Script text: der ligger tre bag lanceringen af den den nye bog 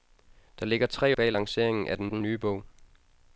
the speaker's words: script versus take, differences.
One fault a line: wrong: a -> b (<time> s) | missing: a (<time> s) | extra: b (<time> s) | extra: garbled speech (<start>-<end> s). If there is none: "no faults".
no faults